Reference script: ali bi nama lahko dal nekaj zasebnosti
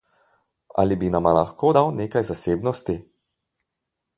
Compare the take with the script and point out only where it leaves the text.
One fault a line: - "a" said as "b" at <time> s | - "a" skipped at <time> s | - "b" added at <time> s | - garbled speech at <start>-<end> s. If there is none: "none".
none